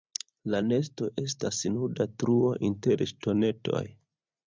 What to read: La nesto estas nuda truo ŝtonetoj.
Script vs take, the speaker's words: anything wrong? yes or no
yes